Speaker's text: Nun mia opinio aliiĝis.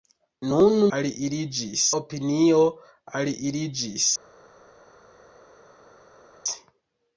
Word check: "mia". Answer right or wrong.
wrong